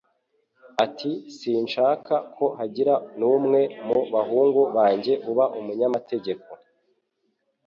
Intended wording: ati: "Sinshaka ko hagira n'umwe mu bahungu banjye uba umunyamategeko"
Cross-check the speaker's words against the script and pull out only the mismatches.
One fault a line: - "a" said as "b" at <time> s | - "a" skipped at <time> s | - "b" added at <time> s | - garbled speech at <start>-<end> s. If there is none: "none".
none